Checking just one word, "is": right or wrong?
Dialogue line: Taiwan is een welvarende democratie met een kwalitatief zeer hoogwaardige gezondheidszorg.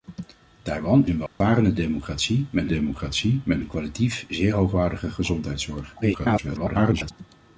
wrong